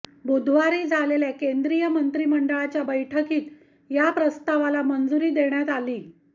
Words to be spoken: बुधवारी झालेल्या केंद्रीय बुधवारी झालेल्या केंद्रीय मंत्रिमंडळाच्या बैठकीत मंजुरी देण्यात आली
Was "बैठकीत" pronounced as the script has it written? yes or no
no